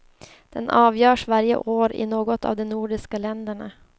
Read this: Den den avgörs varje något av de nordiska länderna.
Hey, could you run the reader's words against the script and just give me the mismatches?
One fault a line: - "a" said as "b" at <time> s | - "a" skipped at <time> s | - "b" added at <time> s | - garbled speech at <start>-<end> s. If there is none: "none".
- "den" skipped at 0.7 s
- "år i" added at 1.6 s